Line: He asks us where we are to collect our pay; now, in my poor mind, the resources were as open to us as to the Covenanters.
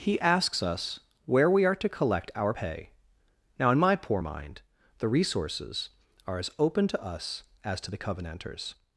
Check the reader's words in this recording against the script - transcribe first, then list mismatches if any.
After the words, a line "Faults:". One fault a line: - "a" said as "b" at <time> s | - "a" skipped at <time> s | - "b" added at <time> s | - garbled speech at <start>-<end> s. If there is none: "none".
He asks us where we are to collect our pay; now, in my poor mind, the resources are as open to us as to the Covenanters.
Faults:
- "were" said as "are" at 6.2 s